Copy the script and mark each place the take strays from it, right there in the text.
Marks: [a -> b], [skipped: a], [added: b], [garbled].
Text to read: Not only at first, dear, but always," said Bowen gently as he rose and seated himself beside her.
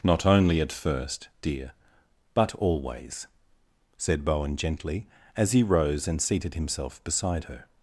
Not only at first, dear, but always," said Bowen gently as he rose and seated himself beside her.